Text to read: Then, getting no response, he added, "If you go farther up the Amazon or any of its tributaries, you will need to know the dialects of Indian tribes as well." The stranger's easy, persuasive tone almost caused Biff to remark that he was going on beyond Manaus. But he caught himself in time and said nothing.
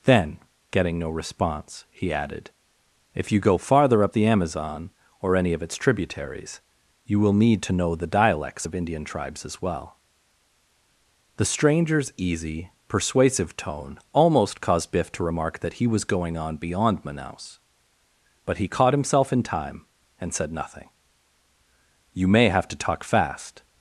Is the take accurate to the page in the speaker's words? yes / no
no